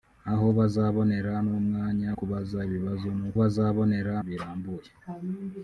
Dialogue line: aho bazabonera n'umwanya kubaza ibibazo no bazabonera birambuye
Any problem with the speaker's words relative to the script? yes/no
no